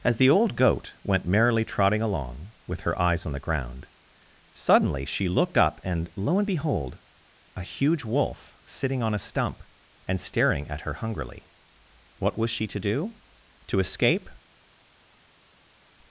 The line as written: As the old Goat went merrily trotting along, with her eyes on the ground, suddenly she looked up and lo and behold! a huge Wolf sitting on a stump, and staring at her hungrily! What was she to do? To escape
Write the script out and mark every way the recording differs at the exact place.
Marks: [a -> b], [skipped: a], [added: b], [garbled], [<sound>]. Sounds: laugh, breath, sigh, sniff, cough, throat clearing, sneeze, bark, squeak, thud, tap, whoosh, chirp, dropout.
As the old Goat went merrily trotting along, with her eyes on the ground, suddenly she looked up and lo and behold! a huge Wolf sitting on a stump, and staring at her hungrily! What was she to do? To escape